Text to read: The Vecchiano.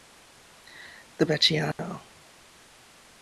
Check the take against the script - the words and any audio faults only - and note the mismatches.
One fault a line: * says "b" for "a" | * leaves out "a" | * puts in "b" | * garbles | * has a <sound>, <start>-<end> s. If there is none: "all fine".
* has a dropout, 1.7-1.8 s